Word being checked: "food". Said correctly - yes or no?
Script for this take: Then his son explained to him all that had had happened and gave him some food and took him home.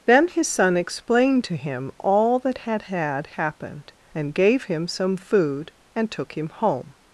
yes